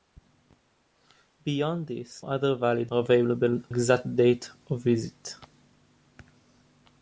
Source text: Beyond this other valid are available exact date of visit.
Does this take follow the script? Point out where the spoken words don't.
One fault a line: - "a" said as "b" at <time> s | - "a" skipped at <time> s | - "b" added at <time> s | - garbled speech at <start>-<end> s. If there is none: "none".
none